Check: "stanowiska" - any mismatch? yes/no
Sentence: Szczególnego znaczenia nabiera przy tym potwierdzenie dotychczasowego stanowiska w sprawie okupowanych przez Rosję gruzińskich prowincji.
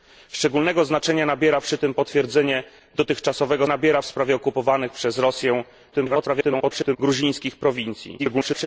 yes